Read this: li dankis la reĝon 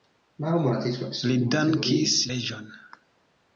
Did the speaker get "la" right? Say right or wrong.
wrong